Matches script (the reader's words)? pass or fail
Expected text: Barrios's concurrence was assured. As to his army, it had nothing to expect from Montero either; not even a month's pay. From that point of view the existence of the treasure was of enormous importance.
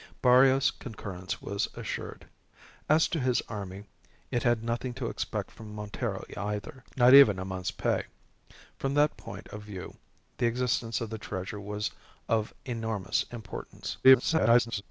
fail